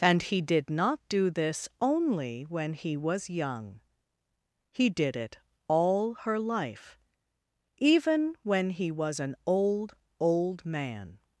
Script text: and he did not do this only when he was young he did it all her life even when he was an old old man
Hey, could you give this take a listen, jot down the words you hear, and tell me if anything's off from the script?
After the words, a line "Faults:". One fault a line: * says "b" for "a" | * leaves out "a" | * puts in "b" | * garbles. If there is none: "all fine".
and he did not do this only when he was young he did it all her life even when he was an old old man
Faults:
all fine